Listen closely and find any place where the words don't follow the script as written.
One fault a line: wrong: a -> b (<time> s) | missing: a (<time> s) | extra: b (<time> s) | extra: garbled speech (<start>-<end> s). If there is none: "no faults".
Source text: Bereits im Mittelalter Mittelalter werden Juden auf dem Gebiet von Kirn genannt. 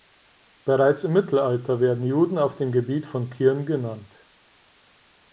missing: Mittelalter (1.8 s)